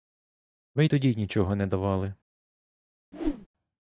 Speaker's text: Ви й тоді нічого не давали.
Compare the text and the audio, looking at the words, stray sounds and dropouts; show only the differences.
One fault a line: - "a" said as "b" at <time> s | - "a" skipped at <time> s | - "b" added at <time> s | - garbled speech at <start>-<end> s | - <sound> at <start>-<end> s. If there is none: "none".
- whoosh at 3.1-3.5 s